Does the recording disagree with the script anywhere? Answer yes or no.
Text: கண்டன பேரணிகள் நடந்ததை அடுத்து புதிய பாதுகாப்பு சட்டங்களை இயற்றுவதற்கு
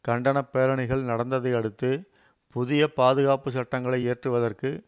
no